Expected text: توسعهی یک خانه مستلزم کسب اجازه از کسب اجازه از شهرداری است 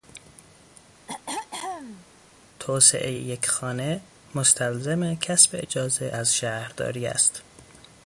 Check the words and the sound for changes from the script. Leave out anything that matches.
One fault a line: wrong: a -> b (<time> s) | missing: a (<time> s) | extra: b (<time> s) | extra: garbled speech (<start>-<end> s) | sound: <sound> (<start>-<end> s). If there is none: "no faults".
sound: throat clearing (1.1-2.1 s)
missing: کسب اجازه از (6.3 s)